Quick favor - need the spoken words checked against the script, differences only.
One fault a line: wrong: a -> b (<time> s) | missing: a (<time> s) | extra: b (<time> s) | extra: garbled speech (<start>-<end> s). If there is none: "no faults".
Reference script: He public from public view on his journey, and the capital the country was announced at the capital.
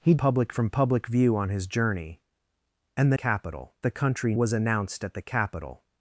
no faults